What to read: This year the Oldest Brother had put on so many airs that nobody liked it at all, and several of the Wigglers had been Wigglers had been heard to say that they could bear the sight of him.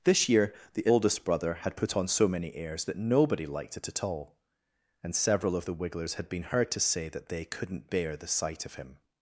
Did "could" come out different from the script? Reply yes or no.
yes